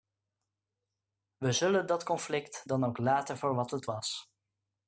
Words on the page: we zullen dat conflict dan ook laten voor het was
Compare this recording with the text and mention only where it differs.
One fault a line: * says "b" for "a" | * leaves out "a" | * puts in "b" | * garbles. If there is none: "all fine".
* puts in "wat"